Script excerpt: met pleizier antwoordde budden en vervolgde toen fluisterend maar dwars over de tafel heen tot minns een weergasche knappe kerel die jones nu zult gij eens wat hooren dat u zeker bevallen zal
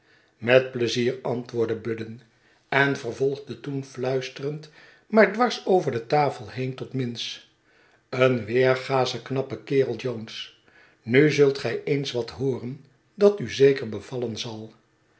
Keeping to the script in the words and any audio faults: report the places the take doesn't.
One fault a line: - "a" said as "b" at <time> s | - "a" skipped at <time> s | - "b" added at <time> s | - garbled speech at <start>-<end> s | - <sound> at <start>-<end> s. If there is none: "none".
- "die" skipped at 10.0 s